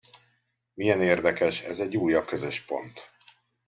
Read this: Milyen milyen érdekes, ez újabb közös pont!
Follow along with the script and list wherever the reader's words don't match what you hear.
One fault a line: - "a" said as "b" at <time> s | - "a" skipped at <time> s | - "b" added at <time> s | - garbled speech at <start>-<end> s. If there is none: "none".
- "milyen" skipped at 1.0 s
- "egy" added at 1.8 s